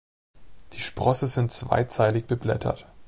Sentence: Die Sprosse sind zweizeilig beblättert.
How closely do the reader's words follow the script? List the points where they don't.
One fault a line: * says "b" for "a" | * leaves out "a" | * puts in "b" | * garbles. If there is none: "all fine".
all fine